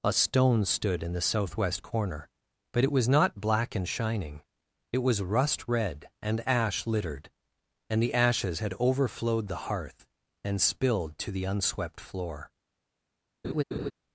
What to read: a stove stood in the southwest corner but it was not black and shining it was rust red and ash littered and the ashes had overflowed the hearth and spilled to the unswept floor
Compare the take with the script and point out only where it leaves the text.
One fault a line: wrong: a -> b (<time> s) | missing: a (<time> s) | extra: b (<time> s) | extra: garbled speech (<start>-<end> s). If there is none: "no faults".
wrong: stove -> stone (0.1 s)